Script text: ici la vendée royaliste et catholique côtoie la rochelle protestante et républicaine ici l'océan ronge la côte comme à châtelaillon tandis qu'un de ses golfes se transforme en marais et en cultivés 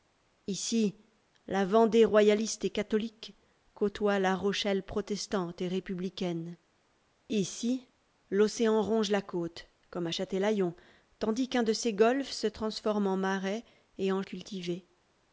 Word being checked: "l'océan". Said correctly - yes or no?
yes